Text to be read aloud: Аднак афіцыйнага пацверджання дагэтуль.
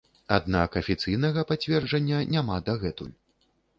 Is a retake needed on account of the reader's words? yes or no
yes